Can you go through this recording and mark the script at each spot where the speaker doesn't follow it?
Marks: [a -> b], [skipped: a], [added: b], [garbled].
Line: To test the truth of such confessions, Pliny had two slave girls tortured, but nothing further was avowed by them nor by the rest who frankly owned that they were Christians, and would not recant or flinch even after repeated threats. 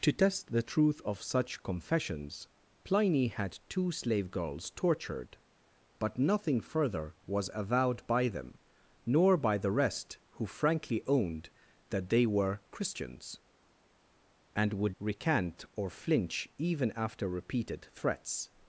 To test the truth of such confessions, Pliny had two slave girls tortured, but nothing further was avowed by them nor by the rest who frankly owned that they were Christians, and would [skipped: not] recant or flinch even after repeated threats.